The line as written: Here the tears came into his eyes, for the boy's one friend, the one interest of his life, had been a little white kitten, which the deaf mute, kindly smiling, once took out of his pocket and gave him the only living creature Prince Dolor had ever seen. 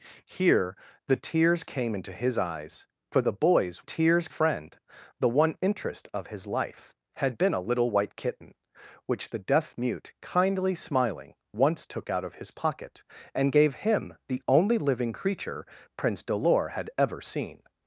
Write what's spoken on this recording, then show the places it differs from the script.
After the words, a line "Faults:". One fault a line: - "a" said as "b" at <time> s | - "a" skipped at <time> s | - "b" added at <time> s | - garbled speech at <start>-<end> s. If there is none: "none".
Here the tears came into his eyes, for the boy's tears friend, the one interest of his life, had been a little white kitten, which the deaf mute, kindly smiling, once took out of his pocket and gave him the only living creature Prince Dolor had ever seen.
Faults:
- "one" said as "tears" at 3.8 s